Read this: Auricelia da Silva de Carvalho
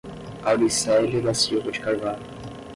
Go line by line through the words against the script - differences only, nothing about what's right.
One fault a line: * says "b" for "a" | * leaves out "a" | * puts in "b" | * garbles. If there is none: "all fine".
all fine